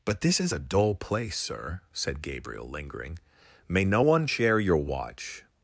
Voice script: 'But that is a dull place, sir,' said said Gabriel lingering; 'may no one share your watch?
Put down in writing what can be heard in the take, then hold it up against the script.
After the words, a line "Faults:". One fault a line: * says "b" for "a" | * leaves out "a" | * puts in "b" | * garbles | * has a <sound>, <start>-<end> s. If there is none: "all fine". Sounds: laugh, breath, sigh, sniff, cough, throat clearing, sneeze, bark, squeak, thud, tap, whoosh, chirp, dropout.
'But this is a dull place, sir,' said Gabriel lingering; 'may no one share your watch?
Faults:
* says "this" for "that"
* leaves out "said"